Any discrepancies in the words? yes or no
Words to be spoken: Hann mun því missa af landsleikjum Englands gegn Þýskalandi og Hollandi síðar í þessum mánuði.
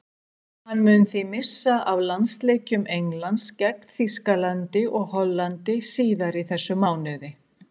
no